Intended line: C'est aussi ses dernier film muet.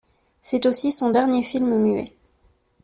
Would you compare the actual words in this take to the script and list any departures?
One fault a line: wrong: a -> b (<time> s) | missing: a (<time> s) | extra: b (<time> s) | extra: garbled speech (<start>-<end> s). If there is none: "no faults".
wrong: ses -> son (0.9 s)